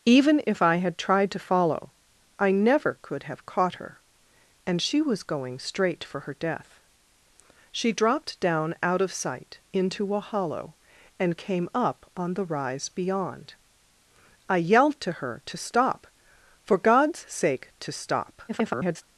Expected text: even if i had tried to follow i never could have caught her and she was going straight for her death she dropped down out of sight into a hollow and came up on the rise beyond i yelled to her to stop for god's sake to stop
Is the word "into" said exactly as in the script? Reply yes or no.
yes